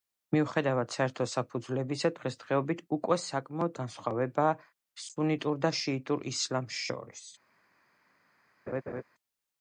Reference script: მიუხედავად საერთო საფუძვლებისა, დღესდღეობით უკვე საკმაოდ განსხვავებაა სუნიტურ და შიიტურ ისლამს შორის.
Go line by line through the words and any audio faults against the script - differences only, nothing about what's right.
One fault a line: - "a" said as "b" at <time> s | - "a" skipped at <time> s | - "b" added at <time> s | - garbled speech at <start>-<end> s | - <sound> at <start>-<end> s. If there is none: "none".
- laugh at 8.7-9.0 s